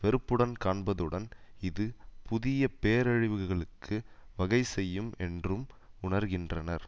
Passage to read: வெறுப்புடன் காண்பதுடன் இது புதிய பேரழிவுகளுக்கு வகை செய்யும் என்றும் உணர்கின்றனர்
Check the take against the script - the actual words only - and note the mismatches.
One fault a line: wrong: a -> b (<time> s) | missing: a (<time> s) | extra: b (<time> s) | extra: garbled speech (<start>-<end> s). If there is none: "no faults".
no faults